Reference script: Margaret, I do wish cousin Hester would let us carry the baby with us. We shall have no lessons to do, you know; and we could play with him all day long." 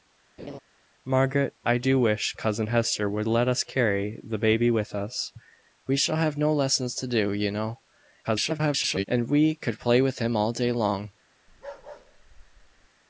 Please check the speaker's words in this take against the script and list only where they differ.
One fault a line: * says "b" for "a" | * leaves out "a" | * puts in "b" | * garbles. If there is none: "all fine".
* garbles